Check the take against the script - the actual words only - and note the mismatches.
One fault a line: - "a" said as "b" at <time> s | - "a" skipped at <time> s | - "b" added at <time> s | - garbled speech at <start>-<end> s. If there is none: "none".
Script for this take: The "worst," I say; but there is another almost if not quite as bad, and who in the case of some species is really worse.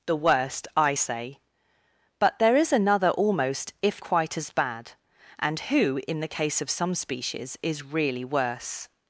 - "not" skipped at 4.0 s